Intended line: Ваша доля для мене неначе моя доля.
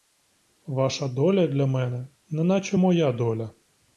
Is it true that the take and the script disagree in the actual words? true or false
false